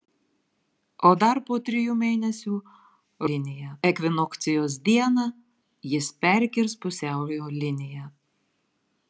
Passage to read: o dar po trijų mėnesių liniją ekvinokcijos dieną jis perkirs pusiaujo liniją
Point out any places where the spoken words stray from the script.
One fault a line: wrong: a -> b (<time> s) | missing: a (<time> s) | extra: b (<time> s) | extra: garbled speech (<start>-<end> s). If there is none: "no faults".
no faults